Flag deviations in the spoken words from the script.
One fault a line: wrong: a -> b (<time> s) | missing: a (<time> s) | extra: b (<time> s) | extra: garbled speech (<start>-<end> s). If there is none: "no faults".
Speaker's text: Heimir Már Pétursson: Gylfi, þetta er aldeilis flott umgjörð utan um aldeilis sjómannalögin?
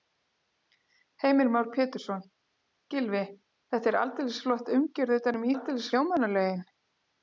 no faults